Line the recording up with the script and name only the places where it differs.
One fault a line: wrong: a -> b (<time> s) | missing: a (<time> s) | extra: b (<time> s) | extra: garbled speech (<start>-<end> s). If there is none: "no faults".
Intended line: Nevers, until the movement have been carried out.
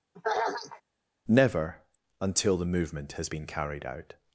wrong: Nevers -> Never (1.3 s)
wrong: have -> has (3.1 s)